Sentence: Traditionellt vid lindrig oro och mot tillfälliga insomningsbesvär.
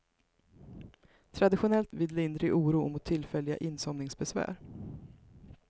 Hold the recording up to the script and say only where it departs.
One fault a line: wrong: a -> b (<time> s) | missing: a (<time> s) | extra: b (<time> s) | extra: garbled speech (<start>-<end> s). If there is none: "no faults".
no faults